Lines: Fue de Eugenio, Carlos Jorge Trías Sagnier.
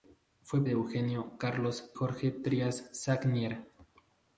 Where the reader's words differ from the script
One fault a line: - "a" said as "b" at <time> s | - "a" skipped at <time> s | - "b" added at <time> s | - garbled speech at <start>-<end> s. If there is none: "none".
none